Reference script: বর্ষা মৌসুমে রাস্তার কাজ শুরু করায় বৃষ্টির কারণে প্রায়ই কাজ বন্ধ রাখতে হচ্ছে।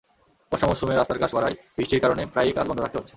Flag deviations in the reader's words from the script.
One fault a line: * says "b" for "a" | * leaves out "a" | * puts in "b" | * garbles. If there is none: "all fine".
* leaves out "শুরু"